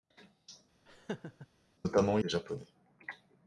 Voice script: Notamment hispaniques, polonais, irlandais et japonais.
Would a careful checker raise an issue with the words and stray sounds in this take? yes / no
yes